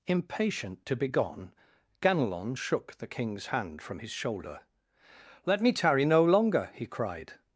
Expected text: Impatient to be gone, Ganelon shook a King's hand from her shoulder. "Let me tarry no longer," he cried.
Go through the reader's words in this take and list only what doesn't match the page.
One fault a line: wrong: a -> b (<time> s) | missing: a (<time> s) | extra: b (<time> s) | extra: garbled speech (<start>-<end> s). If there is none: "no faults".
wrong: a -> the (3.0 s)
wrong: her -> his (4.0 s)